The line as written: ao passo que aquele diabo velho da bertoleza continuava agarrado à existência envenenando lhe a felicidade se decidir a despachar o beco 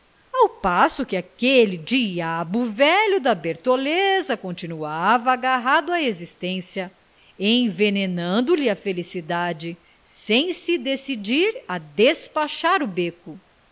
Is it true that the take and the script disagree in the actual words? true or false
true